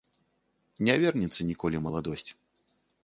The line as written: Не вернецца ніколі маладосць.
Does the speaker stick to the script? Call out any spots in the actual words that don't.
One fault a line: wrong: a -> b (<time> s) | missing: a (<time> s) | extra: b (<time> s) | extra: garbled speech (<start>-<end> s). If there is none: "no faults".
no faults